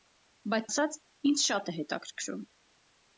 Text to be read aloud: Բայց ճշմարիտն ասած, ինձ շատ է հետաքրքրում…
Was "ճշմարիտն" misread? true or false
true